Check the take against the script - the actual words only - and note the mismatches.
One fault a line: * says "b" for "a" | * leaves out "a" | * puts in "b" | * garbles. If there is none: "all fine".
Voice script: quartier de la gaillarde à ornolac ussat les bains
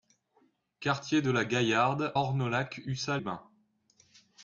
* leaves out "à"
* leaves out "les"